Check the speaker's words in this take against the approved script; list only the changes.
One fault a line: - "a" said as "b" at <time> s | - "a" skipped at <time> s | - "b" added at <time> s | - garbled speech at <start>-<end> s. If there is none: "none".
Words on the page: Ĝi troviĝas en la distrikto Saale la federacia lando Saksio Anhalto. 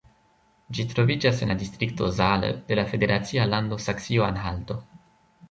- "de" added at 2.7 s